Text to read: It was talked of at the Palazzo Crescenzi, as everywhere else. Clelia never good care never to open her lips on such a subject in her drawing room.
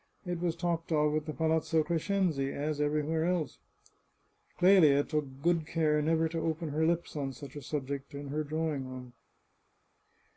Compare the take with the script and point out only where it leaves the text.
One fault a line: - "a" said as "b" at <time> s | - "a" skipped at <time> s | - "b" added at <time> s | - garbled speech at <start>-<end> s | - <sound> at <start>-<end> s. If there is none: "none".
- "never" said as "took" at 5.0 s